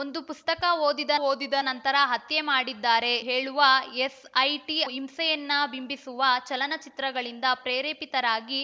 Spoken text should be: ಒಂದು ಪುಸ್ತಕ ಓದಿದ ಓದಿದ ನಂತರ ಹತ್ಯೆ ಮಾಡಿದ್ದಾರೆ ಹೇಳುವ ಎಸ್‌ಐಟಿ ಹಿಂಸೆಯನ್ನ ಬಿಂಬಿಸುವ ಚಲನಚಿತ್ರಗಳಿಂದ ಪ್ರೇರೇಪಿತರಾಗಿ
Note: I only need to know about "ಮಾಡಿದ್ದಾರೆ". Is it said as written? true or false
true